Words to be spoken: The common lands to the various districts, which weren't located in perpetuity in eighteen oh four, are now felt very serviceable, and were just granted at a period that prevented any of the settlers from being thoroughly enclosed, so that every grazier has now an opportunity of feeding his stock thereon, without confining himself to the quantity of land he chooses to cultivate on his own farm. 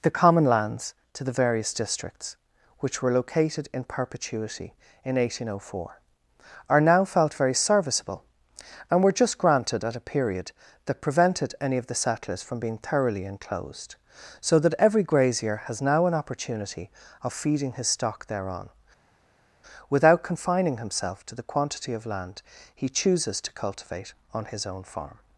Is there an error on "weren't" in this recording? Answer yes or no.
yes